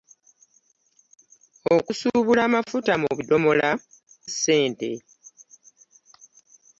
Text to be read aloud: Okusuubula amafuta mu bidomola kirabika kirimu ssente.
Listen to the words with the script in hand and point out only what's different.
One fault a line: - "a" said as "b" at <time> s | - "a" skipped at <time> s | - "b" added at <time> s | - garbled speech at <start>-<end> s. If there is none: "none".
- "kirabika kirimu" skipped at 3.7 s